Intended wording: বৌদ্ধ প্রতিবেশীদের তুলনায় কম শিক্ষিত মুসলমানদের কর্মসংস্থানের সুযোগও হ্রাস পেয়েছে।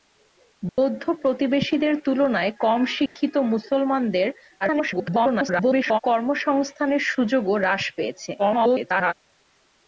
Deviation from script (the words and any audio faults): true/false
true